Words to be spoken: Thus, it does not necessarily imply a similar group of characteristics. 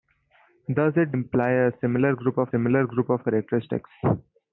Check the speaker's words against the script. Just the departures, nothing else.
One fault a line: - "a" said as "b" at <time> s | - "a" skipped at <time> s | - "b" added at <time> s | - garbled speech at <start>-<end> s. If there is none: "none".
- "does not necessarily imply a" said as "imply a similar group of" at 1.1 s